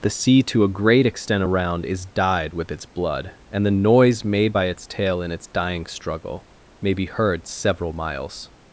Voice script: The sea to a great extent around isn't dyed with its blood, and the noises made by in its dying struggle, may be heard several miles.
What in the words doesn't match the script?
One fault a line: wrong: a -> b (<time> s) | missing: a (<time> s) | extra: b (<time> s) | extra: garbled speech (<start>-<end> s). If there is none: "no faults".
wrong: isn't -> is (1.9 s)
wrong: noises -> noise (3.7 s)
extra: its tail (4.6 s)